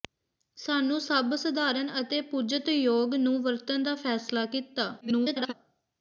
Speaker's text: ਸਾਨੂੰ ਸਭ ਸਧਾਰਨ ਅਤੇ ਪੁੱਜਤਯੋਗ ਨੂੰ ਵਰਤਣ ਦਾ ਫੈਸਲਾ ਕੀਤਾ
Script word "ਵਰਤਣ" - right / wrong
right